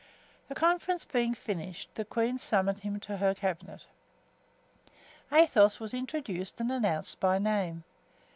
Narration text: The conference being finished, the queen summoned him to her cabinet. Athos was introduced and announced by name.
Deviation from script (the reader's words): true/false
false